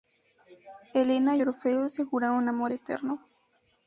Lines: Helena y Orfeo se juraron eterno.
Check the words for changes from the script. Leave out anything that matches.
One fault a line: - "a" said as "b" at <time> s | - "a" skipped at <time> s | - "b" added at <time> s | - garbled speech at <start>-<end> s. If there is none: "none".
- "amor" added at 2.5 s